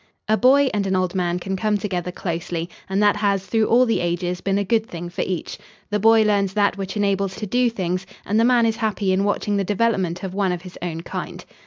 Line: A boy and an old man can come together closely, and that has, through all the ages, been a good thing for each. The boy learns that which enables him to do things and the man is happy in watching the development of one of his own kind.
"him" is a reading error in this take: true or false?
true